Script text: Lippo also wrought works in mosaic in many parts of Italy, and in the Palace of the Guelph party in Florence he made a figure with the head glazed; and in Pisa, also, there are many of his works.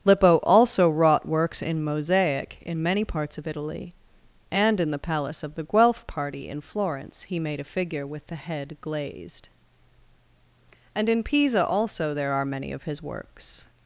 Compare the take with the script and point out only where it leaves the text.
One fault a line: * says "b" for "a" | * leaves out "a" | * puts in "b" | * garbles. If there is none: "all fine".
all fine